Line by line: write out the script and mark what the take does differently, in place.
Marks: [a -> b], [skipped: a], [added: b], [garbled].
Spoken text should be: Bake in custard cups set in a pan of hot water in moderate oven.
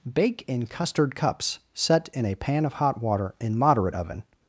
Bake in custard cups set in a pan of hot water in moderate oven.